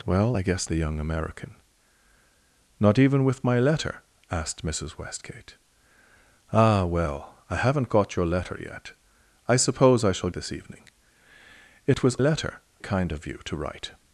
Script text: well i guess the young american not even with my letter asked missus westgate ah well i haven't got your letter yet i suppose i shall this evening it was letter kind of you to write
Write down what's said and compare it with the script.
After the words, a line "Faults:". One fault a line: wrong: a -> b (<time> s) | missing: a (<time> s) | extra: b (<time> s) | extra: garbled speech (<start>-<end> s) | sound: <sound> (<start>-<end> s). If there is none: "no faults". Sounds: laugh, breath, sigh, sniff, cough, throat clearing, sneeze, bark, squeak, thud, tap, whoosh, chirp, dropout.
well i guess the young american not even with my letter asked missus westgate ah well i haven't got your letter yet i suppose i shall this evening it was letter kind of you to write
Faults:
no faults